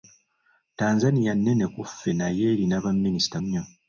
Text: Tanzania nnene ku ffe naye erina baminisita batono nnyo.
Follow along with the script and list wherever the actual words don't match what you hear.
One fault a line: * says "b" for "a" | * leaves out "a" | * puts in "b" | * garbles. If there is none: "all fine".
* leaves out "batono"